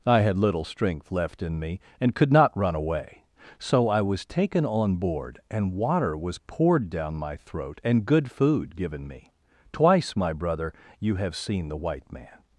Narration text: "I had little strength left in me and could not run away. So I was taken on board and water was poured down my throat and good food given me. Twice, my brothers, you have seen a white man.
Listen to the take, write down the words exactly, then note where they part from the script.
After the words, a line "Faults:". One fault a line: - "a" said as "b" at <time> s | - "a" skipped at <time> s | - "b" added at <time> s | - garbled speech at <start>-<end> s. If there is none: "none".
"I had little strength left in me and could not run away. So I was taken on board and water was poured down my throat and good food given me. Twice, my brother, you have seen the white man.
Faults:
- "brothers" said as "brother" at 10.3 s
- "a" said as "the" at 11.7 s